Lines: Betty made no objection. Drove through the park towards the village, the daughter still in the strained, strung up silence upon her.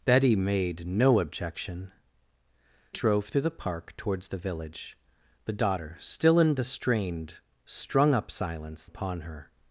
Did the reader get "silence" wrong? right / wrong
right